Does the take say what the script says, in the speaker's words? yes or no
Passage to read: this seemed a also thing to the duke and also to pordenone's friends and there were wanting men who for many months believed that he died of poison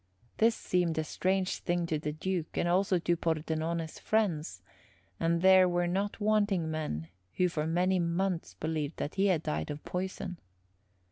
no